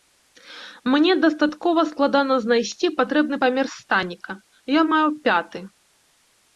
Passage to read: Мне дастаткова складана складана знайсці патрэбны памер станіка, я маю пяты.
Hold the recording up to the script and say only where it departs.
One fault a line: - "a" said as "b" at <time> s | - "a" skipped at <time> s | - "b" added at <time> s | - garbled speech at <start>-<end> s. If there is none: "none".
- "складана" skipped at 2.4 s